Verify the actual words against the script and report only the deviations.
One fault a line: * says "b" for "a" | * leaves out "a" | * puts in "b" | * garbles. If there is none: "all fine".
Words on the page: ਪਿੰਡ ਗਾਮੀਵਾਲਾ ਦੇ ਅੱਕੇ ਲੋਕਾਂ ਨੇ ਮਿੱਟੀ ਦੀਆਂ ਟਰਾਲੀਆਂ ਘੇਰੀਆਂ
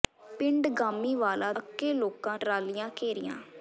* leaves out "ਦੇ"
* leaves out "ਨੇ ਮਿੱਟੀ ਦੀਆਂ"